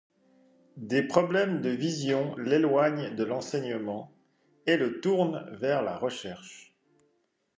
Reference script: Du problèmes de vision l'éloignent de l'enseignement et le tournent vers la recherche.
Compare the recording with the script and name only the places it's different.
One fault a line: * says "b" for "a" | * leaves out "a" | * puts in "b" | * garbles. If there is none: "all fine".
* says "Des" for "Du"